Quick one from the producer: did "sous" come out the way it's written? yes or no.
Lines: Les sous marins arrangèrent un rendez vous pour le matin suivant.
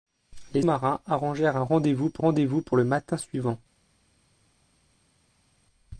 no